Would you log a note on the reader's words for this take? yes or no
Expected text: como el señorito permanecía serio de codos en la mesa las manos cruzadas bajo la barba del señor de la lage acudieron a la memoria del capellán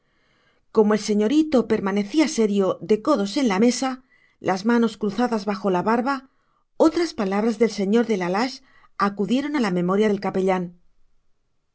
yes